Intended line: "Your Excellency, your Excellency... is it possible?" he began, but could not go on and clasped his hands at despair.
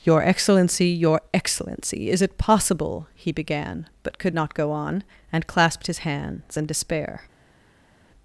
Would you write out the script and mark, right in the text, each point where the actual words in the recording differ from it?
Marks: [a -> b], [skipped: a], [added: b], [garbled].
"Your Excellency, your Excellency... is it possible?" he began, but could not go on and clasped his hands [at -> in] despair.